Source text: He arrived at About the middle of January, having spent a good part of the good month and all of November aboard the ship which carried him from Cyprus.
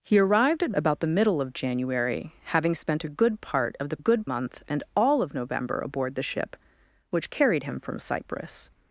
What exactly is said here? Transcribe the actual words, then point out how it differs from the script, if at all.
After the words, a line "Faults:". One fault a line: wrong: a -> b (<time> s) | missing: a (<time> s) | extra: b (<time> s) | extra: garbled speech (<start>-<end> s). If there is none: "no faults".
He arrived at About the middle of January, having spent a good part of the good month and all of November aboard the ship which carried him from Cyprus.
Faults:
no faults